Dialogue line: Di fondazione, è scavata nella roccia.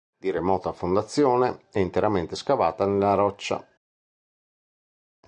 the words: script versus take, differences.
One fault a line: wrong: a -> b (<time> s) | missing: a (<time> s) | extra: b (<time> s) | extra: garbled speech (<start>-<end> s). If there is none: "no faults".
extra: remota (0.3 s)
extra: interamente (1.8 s)